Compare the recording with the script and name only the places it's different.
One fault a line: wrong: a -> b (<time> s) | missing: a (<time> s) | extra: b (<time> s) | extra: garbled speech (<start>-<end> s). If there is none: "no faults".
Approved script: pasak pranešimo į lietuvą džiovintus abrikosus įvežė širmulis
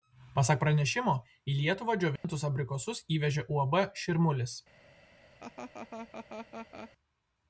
extra: uab (3.6 s)